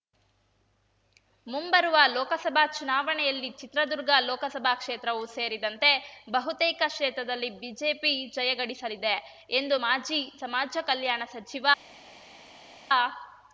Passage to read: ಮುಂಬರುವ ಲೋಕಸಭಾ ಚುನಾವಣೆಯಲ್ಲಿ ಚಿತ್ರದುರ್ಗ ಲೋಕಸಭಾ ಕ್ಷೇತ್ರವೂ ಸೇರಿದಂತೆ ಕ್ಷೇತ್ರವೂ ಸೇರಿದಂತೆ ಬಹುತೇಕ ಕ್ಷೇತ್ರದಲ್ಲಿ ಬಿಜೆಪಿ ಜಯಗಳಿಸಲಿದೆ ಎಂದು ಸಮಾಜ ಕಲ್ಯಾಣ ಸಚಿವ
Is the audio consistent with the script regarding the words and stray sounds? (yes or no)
no